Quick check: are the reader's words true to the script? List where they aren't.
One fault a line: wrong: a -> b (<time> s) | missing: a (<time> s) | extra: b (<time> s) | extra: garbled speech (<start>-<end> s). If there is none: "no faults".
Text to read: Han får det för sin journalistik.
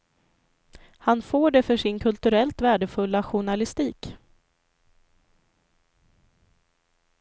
extra: kulturellt värdefulla (2.0 s)